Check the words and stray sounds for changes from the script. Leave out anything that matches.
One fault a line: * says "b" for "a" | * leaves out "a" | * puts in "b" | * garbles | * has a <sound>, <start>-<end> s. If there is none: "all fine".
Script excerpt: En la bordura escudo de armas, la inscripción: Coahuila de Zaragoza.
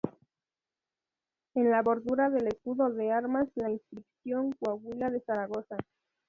* puts in "del"